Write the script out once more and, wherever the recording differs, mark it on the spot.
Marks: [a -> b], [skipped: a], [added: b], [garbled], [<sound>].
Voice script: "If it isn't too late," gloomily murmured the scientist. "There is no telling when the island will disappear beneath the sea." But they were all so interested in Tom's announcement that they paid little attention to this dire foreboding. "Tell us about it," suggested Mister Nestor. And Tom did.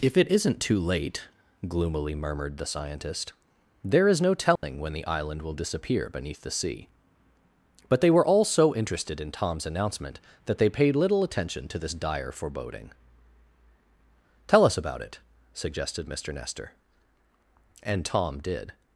"If it isn't too late," gloomily murmured the scientist. "There is no telling [dropout] when the island will disappear beneath the sea." But they were all so interested in Tom's announcement that they paid little attention to this dire foreboding. "Tell us about it," suggested Mister Nestor. And Tom did.